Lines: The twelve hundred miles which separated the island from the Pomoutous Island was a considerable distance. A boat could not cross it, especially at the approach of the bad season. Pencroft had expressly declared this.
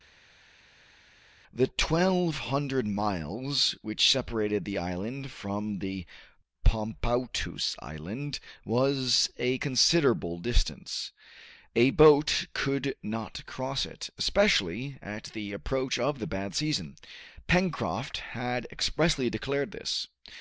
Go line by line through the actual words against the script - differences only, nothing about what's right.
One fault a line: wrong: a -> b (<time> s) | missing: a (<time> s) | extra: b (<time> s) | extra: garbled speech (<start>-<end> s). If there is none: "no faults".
no faults